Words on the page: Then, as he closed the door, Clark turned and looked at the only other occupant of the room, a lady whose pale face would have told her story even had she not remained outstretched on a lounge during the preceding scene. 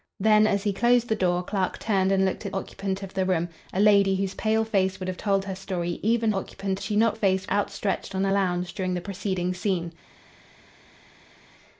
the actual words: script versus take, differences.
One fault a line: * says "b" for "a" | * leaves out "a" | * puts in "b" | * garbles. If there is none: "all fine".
* leaves out "the only other"
* says "occupant" for "had"
* says "face" for "remained"